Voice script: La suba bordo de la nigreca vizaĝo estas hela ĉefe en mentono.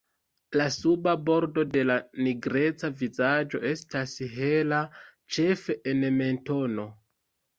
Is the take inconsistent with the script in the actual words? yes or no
no